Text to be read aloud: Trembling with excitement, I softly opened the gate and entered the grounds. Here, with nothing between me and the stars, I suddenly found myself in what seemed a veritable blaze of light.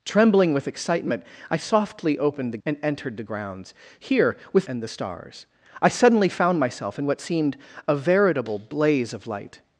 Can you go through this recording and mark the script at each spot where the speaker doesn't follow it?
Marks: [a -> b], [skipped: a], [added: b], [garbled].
Trembling with excitement, I softly opened the [skipped: gate] and entered the grounds. Here, with [skipped: nothing between me] and the stars, I suddenly found myself in what seemed a veritable blaze of light.